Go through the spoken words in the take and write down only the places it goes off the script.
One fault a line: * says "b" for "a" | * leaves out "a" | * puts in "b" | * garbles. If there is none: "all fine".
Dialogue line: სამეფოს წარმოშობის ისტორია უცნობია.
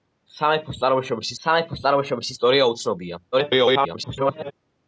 * puts in "სამეფოს წარმოშობის"
* garbles